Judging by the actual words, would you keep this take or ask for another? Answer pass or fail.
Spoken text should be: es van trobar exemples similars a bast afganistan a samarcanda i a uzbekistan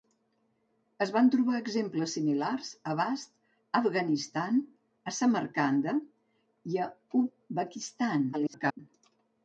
fail